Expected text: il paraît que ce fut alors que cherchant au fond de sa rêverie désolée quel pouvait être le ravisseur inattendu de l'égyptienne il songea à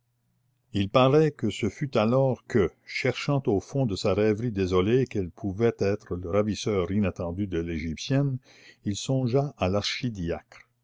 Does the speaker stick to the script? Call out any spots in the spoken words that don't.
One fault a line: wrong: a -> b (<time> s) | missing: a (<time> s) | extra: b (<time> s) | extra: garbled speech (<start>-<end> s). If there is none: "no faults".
no faults